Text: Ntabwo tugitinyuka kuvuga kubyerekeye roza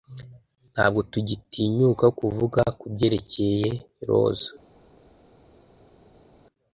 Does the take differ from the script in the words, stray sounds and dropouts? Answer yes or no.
no